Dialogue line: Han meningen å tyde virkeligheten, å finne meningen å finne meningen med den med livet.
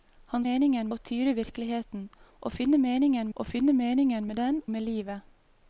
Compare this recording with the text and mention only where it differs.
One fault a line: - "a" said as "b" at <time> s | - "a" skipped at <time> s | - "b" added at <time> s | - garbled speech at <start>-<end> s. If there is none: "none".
none